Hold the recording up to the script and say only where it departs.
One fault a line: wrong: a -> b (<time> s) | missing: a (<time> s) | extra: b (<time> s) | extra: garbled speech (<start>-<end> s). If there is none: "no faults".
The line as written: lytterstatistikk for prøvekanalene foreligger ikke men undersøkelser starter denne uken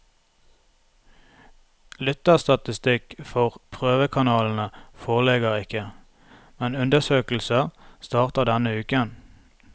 no faults